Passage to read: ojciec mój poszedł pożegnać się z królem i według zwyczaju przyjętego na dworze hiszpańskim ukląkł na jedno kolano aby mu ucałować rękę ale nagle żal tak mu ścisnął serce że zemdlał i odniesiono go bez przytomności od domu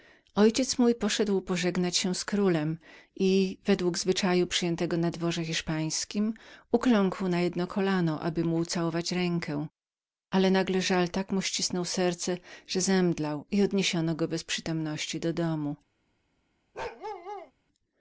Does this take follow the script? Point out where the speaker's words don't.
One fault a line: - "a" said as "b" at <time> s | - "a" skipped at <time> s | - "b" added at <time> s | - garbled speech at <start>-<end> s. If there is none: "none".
- "od" said as "do" at 15.2 s